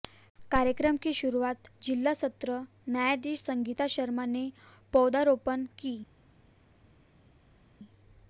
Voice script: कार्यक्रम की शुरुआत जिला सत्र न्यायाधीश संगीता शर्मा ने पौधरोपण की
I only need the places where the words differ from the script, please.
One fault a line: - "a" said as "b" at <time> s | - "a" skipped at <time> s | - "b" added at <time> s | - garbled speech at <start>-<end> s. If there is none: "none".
none